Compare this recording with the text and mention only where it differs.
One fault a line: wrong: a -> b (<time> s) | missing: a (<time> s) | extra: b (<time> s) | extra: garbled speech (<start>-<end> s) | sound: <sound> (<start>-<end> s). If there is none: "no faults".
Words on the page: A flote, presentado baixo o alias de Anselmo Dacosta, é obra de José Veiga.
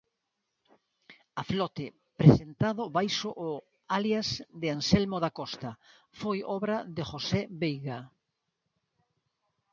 wrong: é -> foi (6.2 s)